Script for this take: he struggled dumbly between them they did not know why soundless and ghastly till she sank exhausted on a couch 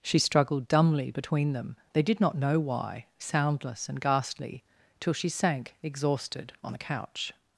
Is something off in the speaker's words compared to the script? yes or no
yes